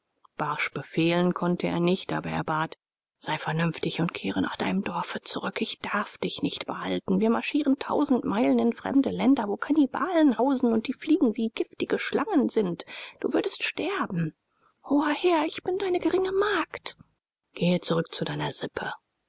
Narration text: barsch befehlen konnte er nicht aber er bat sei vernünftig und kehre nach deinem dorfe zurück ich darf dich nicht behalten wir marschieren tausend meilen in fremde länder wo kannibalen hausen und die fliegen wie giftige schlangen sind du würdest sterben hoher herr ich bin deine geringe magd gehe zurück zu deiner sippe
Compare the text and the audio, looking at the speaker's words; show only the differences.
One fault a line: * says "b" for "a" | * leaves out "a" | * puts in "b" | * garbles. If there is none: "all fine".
all fine